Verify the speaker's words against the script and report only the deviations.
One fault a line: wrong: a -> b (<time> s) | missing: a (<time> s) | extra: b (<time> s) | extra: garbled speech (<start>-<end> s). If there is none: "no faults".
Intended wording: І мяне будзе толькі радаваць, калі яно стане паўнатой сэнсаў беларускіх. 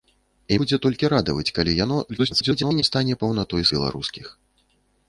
missing: мяне (0.6 s)
extra: garbled speech (2.1-2.8 s)
missing: сэнсаў (3.6 s)